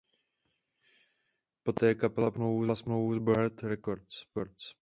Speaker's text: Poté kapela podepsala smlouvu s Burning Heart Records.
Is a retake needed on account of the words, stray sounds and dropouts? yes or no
no